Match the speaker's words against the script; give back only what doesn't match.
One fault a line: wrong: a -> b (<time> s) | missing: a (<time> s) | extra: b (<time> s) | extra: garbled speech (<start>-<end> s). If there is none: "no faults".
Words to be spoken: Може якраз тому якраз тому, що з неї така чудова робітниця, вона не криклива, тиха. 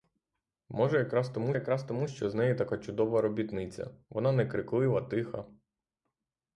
no faults